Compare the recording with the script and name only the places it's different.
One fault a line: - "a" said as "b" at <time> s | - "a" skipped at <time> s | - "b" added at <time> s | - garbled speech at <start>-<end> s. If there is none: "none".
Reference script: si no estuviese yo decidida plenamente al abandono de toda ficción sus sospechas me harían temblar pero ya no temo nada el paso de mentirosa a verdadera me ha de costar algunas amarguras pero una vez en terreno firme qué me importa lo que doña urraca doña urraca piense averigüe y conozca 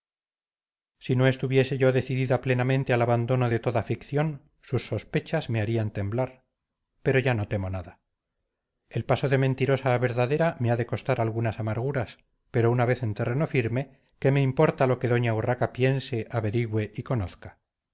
- "doña urraca" skipped at 15.7 s